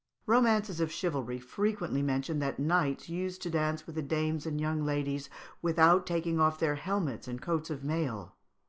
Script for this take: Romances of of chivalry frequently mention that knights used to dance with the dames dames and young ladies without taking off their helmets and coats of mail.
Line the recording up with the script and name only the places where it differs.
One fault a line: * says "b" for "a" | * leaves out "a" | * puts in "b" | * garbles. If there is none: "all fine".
* leaves out "of"
* leaves out "dames"